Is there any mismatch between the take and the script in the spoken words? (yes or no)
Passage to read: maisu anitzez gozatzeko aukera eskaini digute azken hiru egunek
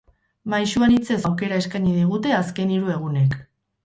yes